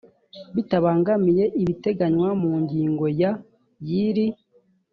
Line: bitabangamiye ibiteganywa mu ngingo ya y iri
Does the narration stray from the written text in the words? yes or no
no